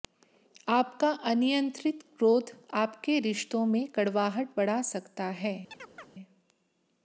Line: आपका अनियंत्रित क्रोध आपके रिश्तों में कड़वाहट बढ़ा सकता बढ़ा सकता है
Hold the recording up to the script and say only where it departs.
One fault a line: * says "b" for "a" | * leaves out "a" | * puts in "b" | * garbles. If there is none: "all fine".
* leaves out "बढ़ा सकता"